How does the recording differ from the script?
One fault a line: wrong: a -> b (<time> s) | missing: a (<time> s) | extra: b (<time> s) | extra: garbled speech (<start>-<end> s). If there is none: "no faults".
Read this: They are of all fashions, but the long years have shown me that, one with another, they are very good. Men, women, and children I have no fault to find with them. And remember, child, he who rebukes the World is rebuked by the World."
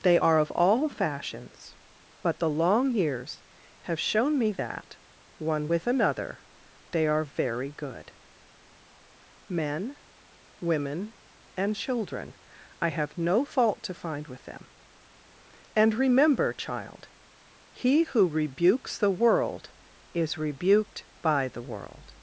no faults